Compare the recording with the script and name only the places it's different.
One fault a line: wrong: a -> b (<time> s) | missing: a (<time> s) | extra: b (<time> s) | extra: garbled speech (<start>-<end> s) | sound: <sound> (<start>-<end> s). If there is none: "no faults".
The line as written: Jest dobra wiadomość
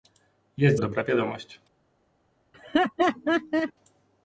sound: laugh (2.5-3.7 s)